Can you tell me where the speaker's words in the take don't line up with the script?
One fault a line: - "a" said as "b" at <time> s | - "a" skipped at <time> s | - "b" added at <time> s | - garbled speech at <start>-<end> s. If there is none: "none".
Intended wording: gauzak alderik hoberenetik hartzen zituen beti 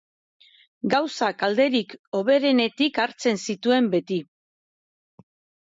none